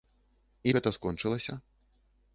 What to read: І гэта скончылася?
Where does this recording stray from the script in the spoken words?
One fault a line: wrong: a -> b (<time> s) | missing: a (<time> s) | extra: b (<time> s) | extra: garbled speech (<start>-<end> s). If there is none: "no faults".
no faults